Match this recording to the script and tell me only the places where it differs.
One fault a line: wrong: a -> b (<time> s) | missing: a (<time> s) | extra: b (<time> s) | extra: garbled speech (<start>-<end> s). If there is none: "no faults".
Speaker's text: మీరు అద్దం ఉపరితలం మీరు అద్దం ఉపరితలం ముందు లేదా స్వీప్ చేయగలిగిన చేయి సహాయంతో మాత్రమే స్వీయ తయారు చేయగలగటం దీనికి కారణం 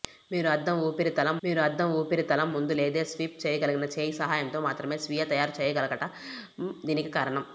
no faults